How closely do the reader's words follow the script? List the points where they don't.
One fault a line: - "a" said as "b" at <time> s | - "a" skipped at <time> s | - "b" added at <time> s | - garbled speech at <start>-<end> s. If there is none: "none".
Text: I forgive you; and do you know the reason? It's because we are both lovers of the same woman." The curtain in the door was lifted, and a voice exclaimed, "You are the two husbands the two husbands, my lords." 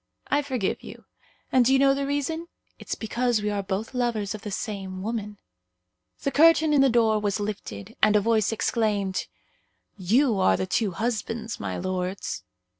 - "the two husbands" skipped at 11.6 s